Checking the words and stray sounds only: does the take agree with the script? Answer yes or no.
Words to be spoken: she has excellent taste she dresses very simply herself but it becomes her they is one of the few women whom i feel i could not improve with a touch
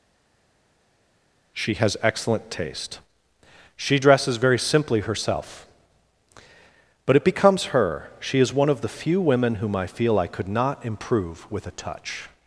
no